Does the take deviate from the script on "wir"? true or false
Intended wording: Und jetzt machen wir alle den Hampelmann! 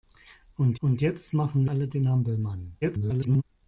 true